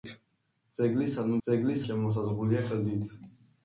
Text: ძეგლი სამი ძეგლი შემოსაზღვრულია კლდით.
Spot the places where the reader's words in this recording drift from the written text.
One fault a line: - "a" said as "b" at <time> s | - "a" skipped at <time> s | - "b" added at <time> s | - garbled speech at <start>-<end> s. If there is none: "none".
none